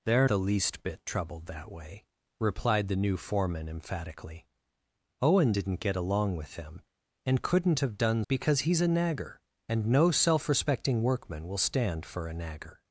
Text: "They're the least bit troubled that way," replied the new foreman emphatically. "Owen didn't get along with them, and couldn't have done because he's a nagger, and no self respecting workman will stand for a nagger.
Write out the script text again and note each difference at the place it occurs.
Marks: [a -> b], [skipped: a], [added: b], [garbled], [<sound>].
"They're the least bit troubled that way," replied the new foreman emphatically. "Owen didn't get along with them, and couldn't have done because he's a nagger, and no self respecting workman will stand for a nagger.